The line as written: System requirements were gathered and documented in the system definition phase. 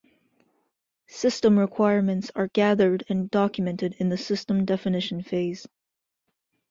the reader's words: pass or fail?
fail